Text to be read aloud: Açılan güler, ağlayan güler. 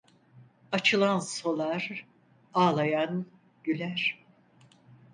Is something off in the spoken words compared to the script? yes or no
yes